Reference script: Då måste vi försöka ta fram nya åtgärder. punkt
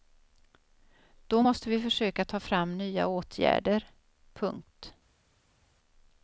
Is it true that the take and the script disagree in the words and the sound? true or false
false